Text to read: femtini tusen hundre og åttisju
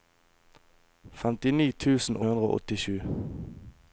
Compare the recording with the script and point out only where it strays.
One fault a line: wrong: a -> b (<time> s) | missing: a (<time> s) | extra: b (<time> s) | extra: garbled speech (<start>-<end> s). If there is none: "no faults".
no faults